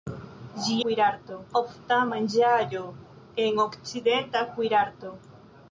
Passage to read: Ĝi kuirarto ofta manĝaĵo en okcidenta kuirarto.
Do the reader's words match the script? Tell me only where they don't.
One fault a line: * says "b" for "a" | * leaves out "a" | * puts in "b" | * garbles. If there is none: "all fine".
all fine